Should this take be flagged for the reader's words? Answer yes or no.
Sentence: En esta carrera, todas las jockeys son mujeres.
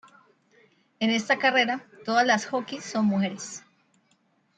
no